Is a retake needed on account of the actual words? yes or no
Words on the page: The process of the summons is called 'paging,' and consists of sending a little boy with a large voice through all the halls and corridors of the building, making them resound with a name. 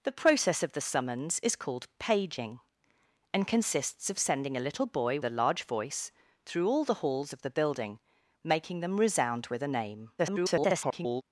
yes